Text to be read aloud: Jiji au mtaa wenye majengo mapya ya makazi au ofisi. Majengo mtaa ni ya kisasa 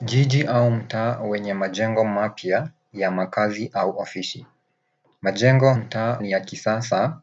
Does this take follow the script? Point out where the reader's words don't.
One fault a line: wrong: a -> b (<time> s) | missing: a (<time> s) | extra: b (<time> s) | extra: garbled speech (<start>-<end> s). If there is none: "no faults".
no faults